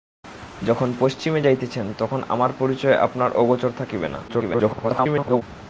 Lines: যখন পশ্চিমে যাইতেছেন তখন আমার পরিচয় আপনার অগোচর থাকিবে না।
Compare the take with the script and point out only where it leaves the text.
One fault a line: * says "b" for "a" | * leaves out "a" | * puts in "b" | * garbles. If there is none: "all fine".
* garbles